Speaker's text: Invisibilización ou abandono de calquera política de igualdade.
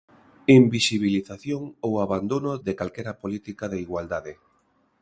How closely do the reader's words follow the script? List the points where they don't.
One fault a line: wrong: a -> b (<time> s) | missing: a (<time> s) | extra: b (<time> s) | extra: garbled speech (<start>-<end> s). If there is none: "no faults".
no faults